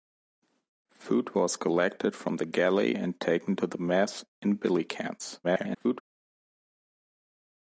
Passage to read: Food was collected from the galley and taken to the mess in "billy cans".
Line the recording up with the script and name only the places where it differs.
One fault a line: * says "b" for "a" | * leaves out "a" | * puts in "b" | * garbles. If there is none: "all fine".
* garbles